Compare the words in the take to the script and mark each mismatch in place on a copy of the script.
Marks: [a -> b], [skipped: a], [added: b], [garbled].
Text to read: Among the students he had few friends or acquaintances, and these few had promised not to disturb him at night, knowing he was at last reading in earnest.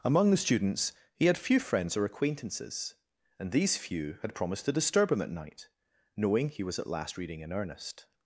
Among the students he had few friends or acquaintances, and these few had promised [skipped: not] to disturb him at night, knowing he was at last reading in earnest.